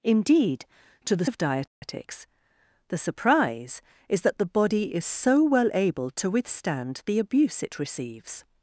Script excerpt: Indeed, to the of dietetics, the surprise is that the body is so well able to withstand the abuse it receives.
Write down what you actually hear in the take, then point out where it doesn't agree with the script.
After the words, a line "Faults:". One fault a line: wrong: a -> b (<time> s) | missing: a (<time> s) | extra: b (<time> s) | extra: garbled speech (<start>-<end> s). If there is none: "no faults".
Indeed, to the of dietetics, the surprise is that the body is so well able to withstand the abuse it receives.
Faults:
no faults